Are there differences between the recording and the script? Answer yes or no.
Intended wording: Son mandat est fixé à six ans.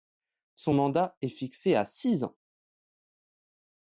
no